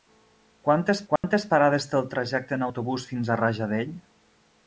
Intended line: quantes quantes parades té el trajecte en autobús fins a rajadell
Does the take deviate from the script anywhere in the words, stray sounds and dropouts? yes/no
yes